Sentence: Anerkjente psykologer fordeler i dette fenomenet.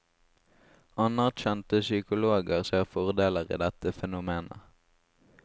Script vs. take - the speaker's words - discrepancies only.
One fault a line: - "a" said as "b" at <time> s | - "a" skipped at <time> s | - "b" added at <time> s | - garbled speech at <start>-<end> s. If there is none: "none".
- "ser" added at 2.7 s